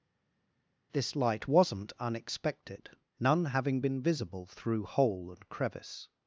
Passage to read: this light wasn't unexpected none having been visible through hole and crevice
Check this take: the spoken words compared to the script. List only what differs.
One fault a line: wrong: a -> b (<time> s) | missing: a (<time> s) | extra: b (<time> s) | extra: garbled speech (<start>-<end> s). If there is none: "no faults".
no faults